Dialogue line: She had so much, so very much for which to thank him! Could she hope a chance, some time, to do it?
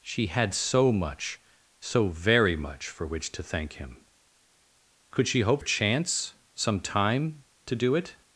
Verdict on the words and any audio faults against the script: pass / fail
pass